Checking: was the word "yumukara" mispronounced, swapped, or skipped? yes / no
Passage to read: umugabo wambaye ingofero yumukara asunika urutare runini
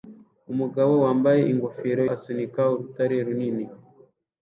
yes